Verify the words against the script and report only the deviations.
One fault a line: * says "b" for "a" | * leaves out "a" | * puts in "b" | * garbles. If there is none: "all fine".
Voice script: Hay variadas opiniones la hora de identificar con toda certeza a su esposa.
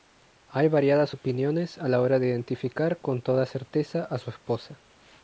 * puts in "a"